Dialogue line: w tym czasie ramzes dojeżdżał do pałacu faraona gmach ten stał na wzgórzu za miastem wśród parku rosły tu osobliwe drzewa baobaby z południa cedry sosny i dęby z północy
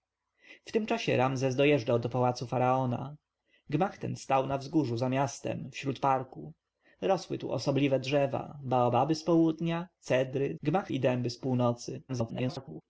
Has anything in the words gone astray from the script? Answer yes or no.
yes